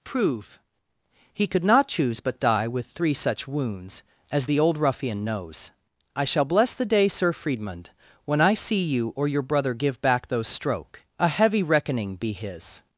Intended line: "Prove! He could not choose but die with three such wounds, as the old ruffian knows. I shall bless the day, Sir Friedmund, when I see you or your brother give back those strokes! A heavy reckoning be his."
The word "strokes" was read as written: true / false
false